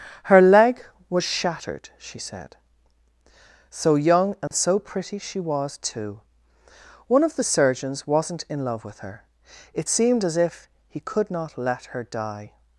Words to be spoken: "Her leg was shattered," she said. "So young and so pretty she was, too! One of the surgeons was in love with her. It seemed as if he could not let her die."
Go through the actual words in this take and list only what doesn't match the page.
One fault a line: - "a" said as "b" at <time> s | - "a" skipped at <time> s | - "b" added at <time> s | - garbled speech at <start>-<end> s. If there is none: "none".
- "was" said as "wasn't" at 8.1 s